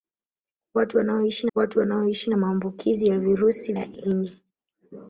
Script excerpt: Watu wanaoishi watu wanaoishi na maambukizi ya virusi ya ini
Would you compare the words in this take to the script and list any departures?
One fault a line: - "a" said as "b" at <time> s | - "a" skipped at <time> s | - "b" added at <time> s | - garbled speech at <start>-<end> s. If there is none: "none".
none